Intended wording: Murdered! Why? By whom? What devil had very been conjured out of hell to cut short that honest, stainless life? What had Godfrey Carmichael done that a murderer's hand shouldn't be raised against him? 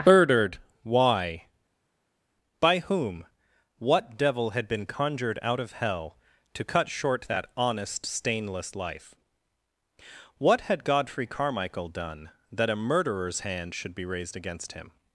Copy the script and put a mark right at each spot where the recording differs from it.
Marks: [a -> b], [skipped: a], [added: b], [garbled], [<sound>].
Murdered! Why? By whom? What devil had [skipped: very] been conjured out of hell to cut short that honest, stainless life? What had Godfrey Carmichael done that a murderer's hand [shouldn't -> should] be raised against him?